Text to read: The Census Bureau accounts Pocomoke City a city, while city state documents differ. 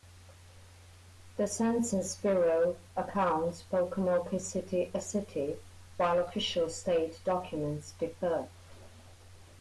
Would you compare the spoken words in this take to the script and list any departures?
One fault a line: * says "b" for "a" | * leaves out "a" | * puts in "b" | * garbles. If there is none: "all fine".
* says "official" for "city"